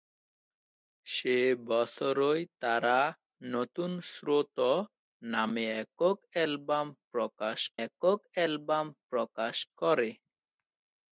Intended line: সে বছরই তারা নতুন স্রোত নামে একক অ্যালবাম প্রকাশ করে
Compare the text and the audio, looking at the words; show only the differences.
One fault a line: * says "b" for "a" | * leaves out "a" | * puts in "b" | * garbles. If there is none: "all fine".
* puts in "একক অ্যালবাম প্রকাশ"